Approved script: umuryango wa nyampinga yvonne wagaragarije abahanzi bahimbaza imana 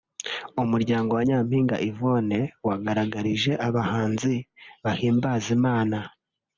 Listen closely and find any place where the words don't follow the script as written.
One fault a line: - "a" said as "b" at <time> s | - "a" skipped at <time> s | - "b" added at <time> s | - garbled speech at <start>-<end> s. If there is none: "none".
none